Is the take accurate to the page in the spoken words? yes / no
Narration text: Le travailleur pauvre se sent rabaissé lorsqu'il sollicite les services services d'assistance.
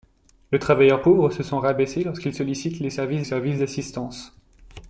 yes